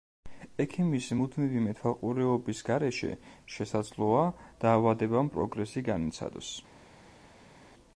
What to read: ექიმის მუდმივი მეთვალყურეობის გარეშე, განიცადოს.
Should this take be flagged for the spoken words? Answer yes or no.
yes